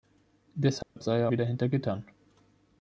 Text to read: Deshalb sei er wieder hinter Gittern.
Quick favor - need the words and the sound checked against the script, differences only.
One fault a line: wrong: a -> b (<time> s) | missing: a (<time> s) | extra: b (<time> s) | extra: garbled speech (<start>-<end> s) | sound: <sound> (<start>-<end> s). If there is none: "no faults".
sound: dropout (0.8-1.0 s)